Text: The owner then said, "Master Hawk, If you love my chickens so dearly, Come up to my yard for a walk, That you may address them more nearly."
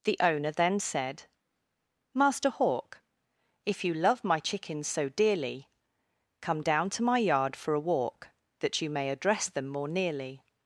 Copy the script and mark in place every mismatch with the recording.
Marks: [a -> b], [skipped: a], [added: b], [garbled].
The owner then said, "Master Hawk, If you love my chickens so dearly, Come [up -> down] to my yard for a walk, That you may address them more nearly."